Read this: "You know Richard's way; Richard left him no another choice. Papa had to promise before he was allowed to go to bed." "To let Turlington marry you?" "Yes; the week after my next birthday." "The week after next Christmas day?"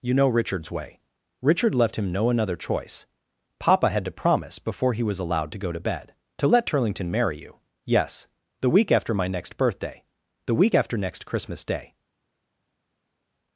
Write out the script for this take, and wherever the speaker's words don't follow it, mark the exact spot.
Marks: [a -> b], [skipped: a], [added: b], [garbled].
"You know Richard's way; Richard left him no another choice. Papa had to promise before he was allowed to go to bed." "To let Turlington marry you?" "Yes; the week after my next birthday." "The week after next Christmas day?"